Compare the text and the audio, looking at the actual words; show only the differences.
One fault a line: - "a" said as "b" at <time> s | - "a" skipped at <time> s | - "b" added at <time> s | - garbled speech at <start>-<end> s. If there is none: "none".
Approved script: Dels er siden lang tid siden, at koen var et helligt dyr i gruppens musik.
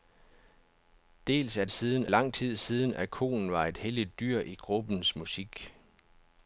none